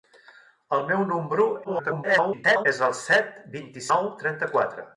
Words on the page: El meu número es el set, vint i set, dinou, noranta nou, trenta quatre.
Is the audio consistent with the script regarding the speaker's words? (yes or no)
no